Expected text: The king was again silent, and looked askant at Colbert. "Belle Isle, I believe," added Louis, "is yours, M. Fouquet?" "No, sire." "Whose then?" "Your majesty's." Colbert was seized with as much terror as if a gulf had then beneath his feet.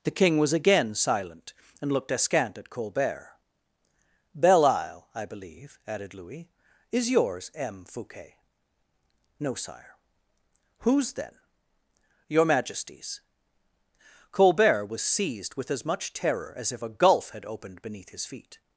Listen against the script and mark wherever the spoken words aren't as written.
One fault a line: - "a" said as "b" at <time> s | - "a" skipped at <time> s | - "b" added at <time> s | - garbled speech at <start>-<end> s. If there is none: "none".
- "then" said as "opened" at 17.4 s